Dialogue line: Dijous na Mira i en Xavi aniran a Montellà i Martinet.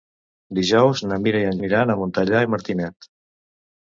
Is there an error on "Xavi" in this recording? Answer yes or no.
yes